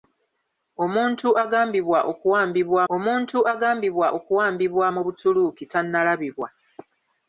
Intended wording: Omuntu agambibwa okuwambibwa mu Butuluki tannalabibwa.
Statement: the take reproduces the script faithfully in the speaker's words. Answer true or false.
false